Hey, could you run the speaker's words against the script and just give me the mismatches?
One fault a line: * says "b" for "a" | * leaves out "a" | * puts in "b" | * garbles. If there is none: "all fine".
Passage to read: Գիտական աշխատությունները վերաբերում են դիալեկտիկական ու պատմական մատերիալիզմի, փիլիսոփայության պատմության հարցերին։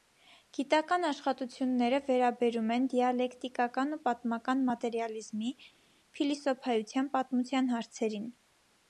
all fine